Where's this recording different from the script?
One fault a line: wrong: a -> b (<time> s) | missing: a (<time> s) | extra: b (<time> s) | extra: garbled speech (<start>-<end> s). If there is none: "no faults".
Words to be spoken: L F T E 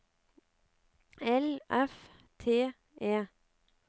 no faults